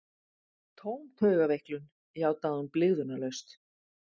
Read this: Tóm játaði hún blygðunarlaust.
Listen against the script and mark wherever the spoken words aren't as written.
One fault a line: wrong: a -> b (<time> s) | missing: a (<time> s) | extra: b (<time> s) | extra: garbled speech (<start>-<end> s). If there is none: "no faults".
extra: taugaveiklun (1.2 s)